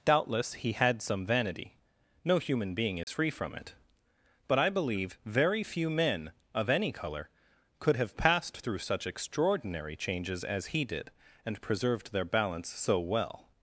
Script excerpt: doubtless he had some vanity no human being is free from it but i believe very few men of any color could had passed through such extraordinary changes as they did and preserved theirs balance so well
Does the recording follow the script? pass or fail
fail